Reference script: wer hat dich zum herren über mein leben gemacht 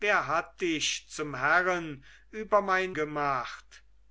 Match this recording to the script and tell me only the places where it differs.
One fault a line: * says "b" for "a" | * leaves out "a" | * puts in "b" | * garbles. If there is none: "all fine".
* leaves out "leben"